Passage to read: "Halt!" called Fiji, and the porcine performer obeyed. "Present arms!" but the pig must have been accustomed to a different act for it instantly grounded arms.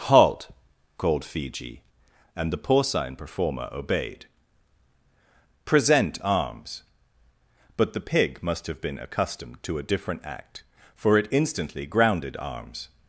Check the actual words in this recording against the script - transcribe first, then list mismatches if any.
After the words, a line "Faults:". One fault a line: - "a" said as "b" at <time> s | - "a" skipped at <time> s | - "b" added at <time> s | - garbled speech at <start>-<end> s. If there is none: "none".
"Halt!" called Fiji, and the porcine performer obeyed. "Present arms!" but the pig must have been accustomed to a different act for it instantly grounded arms.
Faults:
none